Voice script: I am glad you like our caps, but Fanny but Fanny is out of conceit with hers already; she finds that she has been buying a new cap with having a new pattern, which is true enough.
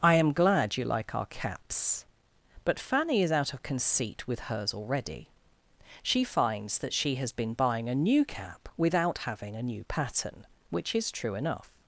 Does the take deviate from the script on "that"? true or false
false